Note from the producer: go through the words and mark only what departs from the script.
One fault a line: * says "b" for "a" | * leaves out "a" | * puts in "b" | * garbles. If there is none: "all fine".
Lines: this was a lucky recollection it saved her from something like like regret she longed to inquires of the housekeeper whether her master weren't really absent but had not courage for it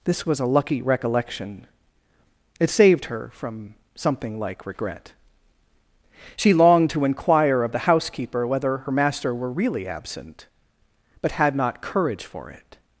* leaves out "like"
* says "inquire" for "inquires"
* says "were" for "weren't"